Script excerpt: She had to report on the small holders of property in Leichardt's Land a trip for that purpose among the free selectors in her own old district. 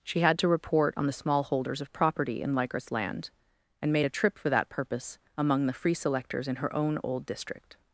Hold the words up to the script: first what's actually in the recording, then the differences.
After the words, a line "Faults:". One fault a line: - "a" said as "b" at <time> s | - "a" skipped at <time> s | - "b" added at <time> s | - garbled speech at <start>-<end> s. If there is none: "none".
She had to report on the small holders of property in Leichardt's Land and made a trip for that purpose among the free selectors in her own old district.
Faults:
- "and made" added at 3.8 s